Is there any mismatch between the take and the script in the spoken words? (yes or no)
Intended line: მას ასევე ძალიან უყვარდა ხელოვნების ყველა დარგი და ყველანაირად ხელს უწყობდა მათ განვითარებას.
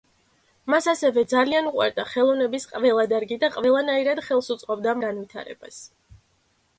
yes